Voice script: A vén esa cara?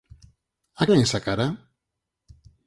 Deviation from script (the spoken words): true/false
false